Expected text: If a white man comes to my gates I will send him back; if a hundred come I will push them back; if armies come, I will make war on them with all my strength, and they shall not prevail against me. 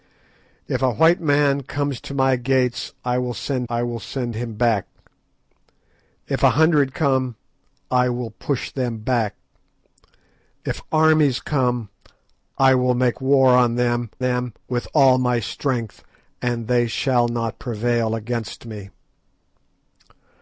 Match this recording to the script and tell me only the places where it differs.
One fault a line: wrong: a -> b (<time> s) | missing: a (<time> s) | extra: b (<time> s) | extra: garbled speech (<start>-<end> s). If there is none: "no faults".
extra: I will send (3.7 s)
extra: them (14.2 s)